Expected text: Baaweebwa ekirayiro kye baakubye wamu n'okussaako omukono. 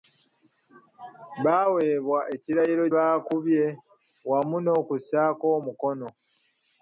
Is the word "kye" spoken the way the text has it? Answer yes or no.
no